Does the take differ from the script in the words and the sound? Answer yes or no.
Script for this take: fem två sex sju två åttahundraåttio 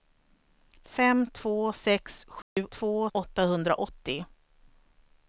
yes